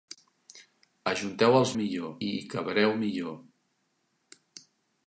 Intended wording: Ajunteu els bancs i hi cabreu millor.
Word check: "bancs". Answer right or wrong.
wrong